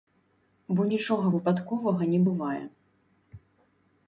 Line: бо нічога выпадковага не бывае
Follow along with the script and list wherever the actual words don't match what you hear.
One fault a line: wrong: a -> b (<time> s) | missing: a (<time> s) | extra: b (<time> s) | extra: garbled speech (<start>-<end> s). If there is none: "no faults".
no faults